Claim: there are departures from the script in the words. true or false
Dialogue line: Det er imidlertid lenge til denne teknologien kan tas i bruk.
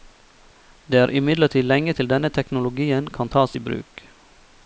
false